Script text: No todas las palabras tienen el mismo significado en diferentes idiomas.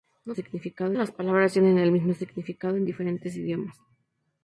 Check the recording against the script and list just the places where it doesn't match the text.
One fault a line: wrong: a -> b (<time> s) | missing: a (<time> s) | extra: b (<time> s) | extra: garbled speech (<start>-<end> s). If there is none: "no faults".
wrong: todas -> significado (0.3 s)